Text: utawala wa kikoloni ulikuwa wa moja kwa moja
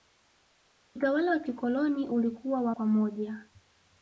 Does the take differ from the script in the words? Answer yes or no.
yes